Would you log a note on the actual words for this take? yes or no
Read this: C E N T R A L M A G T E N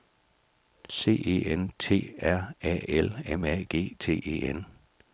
no